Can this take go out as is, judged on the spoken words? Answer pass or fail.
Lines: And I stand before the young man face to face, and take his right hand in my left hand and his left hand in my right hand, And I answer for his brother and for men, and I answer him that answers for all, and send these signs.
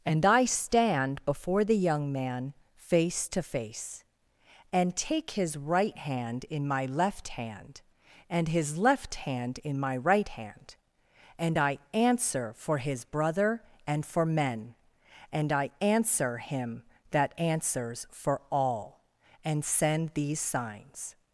pass